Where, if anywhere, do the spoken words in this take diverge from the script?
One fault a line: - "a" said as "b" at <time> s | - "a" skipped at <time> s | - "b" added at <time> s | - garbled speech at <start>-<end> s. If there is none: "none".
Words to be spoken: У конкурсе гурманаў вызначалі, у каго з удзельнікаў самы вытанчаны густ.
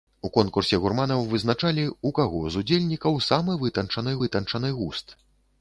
- "вытанчаны" added at 4.3 s